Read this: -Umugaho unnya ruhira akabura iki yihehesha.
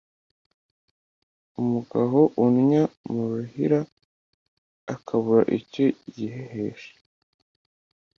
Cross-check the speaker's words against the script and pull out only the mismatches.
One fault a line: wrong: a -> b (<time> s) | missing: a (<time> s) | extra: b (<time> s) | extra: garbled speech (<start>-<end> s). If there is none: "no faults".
extra: mu (3.1 s)
wrong: iki -> icyo (5.6 s)